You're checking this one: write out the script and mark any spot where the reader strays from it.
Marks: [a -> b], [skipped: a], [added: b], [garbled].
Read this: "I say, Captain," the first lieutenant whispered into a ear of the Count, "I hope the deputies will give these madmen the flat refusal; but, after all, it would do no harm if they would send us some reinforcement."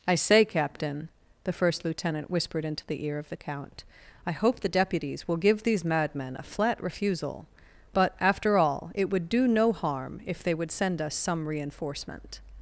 "I say, Captain," the first lieutenant whispered into [a -> the] ear of the Count, "I hope the deputies will give these madmen [the -> a] flat refusal; but, after all, it would do no harm if they would send us some reinforcement."